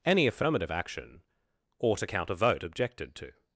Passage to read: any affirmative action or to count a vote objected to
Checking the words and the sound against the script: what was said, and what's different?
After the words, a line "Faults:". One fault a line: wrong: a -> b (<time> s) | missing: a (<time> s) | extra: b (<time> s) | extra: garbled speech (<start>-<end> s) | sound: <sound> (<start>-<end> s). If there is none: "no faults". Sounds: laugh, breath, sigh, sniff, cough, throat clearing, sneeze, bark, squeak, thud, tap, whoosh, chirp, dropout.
any affirmative action or to count a vote objected to
Faults:
no faults